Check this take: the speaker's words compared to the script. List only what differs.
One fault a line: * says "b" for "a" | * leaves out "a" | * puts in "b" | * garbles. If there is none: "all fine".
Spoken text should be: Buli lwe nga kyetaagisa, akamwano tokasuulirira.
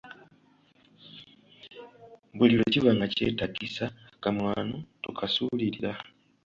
* puts in "kiba"